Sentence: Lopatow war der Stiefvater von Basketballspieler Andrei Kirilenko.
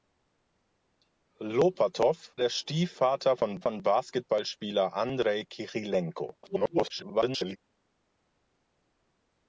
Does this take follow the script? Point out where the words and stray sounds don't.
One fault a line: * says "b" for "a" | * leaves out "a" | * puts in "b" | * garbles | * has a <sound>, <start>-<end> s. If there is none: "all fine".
* leaves out "war"
* puts in "von"
* garbles